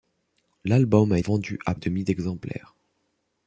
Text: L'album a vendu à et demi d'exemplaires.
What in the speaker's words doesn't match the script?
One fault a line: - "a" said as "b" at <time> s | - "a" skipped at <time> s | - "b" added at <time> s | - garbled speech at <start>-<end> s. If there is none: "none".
none